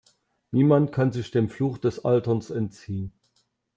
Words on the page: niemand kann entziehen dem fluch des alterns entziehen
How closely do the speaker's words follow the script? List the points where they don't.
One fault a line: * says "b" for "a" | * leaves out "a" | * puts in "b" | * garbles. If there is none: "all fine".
* says "sich" for "entziehen"